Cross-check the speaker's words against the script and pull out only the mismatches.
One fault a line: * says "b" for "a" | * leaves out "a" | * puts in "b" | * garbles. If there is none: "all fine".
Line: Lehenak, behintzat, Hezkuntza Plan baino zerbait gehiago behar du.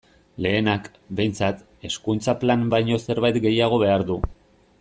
all fine